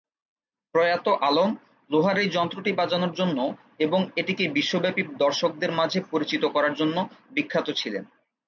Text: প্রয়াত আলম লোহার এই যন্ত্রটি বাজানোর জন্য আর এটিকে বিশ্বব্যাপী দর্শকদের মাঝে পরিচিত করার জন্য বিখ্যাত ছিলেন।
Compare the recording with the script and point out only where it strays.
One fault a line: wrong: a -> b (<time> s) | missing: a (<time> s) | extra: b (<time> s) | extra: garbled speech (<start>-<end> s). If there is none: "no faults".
wrong: আর -> এবং (3.8 s)